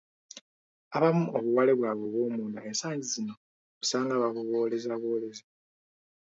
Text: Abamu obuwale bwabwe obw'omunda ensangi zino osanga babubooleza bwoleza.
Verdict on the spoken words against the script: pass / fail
pass